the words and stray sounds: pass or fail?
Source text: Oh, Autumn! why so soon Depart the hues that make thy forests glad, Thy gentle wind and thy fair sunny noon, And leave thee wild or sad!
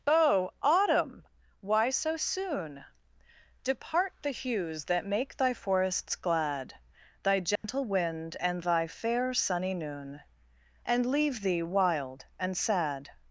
fail